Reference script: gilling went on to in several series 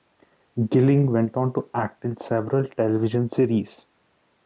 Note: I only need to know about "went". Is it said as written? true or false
true